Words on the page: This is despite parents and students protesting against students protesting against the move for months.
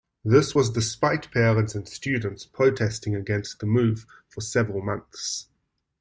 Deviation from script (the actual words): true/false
true